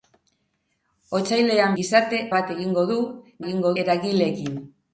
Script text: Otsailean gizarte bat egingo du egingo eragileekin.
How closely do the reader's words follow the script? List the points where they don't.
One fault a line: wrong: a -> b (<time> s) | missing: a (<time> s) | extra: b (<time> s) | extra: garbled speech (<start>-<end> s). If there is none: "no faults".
no faults